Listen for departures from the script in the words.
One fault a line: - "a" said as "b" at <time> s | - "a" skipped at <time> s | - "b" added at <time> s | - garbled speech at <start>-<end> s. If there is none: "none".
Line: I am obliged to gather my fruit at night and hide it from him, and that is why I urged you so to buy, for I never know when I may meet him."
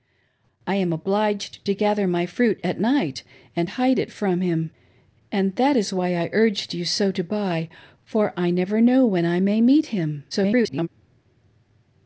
- garbled speech at 10.3-10.9 s